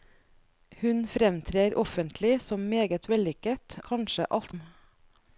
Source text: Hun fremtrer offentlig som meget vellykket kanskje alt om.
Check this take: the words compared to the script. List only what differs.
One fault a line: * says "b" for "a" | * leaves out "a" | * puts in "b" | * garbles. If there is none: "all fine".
all fine